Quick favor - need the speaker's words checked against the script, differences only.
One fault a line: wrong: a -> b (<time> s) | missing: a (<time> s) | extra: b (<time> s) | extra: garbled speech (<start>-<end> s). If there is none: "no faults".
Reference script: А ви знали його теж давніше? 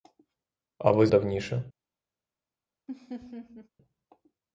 missing: знали його теж (1.1 s)